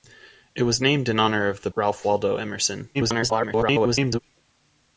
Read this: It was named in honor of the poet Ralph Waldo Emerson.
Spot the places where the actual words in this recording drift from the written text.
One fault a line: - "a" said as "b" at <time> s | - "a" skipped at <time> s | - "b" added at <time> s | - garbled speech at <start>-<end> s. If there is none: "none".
- "poet" skipped at 1.7 s
- garbled speech at 2.9-4.2 s